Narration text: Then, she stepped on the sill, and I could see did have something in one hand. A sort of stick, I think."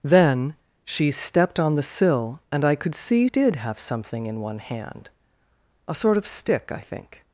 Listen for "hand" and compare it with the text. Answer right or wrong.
right